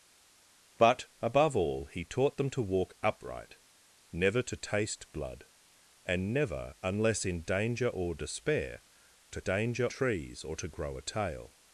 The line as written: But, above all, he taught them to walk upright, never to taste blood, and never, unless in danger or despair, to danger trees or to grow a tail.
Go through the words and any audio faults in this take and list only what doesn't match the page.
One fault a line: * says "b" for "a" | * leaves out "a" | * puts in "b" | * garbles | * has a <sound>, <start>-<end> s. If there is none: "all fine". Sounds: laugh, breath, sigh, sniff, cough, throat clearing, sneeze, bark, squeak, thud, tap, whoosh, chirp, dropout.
all fine